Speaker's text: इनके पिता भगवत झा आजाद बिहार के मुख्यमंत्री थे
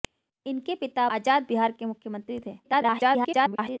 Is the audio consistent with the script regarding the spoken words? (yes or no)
no